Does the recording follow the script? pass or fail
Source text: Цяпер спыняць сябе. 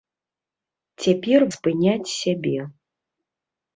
pass